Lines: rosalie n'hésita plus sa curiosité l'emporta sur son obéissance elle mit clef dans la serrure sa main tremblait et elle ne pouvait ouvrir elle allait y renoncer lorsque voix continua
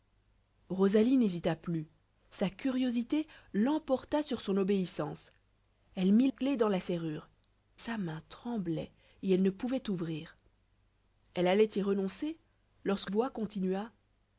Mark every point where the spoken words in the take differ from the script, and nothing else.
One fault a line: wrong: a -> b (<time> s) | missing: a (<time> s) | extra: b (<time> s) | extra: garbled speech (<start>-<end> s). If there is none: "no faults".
no faults